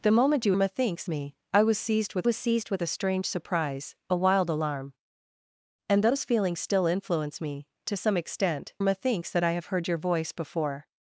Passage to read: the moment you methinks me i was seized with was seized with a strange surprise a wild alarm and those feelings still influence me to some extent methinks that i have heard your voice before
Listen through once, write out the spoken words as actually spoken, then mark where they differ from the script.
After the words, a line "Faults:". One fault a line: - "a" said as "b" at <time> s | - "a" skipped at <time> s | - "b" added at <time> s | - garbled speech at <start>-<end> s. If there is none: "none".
the moment you methinks me i was seized with was seized with a strange surprise a wild alarm and those feelings still influence me to some extent methinks that i have heard your voice before
Faults:
none